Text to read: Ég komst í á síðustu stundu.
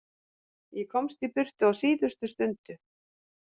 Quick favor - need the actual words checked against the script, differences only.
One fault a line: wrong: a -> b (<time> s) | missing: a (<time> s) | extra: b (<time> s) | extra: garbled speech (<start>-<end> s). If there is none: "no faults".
extra: burtu (1.4 s)